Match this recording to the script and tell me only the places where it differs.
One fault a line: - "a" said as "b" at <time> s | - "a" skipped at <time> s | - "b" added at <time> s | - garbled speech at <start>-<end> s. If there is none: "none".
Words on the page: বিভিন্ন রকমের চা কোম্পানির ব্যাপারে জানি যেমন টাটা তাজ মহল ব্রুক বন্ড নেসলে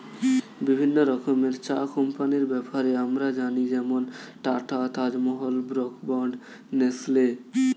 - "আমরা" added at 3.0 s